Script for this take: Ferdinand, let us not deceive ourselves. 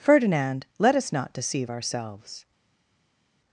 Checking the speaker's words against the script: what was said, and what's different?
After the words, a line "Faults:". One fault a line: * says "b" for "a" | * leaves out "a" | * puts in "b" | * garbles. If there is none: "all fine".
Ferdinand, let us not deceive ourselves.
Faults:
all fine